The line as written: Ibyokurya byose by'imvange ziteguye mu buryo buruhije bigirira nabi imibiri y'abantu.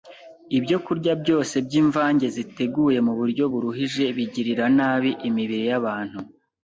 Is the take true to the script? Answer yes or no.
yes